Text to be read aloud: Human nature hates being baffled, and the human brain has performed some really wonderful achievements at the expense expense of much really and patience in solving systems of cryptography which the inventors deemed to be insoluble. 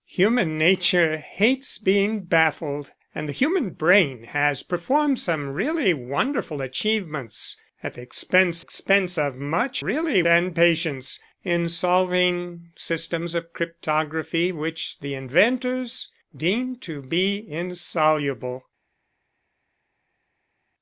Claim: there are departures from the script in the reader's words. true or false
false